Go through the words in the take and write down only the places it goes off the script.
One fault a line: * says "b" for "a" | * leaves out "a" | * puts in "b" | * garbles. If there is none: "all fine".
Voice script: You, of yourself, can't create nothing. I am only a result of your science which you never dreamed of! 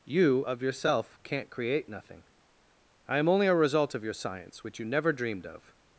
all fine